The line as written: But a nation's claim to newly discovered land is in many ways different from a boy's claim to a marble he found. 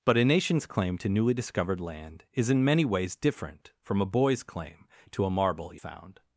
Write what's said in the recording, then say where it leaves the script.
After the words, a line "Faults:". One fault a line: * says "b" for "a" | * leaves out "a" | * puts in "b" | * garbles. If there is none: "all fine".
But a nation's claim to newly discovered land is in many ways different from a boy's claim to a marble he found.
Faults:
all fine